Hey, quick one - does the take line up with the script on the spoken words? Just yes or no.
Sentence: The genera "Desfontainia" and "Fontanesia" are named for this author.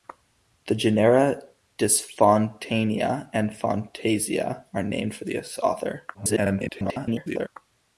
no